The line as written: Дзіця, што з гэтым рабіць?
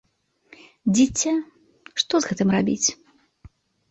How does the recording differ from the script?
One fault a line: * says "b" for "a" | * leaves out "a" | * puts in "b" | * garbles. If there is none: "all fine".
all fine